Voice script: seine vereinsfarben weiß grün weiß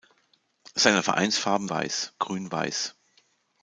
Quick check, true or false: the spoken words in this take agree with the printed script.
true